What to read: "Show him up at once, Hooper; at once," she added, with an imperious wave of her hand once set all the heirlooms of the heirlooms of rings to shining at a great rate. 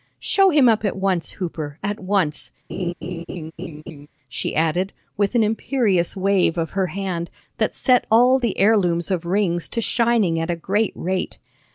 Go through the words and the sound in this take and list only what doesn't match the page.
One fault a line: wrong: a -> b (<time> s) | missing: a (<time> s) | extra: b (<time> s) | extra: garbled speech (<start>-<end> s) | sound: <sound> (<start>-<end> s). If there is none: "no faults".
sound: laugh (2.7-4.1 s)
wrong: once -> that (7.6 s)
missing: the heirlooms of (9.3 s)